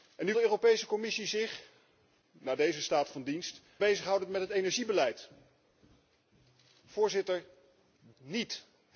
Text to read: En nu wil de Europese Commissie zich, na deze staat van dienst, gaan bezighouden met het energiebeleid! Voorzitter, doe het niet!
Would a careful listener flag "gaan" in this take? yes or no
yes